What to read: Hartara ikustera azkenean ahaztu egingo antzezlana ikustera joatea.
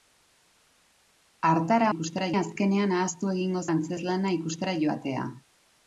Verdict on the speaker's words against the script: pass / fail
pass